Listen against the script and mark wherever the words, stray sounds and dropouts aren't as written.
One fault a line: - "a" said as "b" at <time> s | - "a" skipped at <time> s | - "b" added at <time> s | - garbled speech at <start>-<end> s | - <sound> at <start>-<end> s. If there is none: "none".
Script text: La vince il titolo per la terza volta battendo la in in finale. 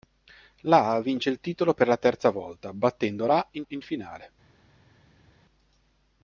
none